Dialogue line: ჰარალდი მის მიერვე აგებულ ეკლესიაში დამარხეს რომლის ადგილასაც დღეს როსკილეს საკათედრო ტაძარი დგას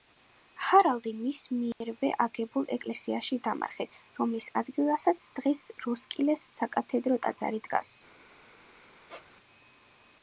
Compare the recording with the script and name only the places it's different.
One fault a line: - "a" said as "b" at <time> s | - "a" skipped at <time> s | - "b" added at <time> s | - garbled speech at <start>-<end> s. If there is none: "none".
none